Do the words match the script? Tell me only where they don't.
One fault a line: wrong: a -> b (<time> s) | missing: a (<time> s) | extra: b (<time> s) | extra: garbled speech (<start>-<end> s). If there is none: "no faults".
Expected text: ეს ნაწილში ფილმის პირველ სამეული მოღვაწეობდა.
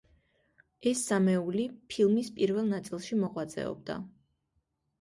wrong: ნაწილში -> სამეული (1.1 s)
wrong: სამეული -> ნაწილში (2.7 s)